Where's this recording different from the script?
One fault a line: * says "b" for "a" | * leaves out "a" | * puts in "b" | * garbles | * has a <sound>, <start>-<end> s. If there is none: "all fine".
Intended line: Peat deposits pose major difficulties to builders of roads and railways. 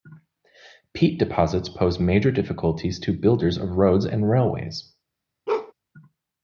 * has a bark, 5.5-5.7 s